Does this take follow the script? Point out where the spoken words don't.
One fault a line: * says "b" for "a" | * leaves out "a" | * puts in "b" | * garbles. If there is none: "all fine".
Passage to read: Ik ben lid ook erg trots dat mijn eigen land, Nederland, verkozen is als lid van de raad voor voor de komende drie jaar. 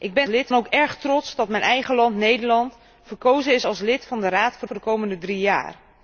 all fine